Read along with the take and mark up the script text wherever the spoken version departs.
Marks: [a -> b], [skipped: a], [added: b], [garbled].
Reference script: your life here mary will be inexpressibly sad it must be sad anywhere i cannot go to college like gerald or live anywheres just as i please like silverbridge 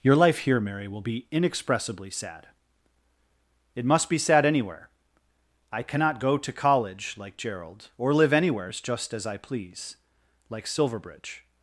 your life here mary will be inexpressibly sad it must be sad anywhere i cannot go to college like gerald or live anywheres just as i please like silverbridge